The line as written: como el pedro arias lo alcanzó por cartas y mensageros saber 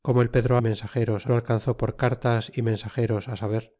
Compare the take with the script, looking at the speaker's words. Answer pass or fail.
fail